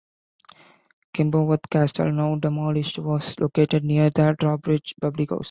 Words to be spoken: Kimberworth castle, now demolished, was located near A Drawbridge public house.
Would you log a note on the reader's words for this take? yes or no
yes